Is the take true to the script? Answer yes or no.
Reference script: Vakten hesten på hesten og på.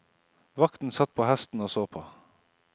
no